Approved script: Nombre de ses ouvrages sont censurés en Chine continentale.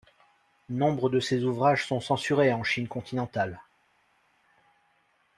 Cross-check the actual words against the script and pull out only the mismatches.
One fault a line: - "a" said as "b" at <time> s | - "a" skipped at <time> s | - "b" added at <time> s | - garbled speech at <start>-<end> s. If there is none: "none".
none